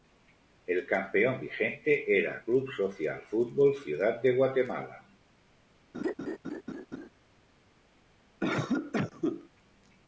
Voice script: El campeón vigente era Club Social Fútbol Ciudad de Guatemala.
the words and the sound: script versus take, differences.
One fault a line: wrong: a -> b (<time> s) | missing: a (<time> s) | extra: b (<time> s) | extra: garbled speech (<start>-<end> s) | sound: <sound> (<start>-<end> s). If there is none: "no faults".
sound: laugh (5.9-7.1 s)
sound: cough (8.4-9.5 s)